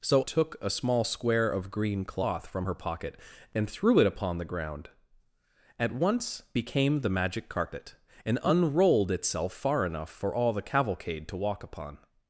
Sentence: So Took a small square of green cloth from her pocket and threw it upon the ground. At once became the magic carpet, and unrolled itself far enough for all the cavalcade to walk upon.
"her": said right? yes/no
yes